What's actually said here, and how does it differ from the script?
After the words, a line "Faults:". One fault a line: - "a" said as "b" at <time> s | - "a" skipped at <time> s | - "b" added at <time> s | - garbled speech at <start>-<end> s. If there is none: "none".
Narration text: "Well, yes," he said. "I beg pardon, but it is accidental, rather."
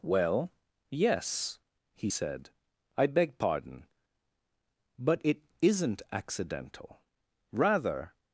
"Well, yes," he said. "I beg pardon, but it isn't accidental, rather."
Faults:
- "is" said as "isn't" at 5.6 s